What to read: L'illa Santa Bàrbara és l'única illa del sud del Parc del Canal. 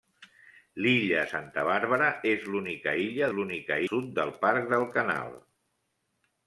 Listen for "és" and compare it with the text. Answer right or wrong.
right